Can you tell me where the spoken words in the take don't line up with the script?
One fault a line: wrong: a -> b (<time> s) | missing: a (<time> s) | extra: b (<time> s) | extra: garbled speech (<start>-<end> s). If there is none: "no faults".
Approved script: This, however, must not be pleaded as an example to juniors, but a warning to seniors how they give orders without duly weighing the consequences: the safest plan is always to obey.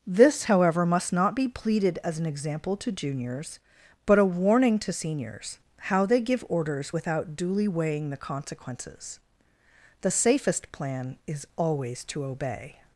no faults